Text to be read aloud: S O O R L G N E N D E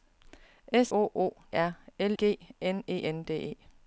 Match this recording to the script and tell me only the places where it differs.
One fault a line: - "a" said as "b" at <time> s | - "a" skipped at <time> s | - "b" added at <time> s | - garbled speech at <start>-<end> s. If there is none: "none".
none